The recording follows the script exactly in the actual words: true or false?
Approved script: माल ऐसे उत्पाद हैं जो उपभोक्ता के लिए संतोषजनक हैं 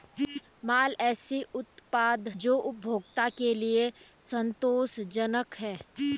false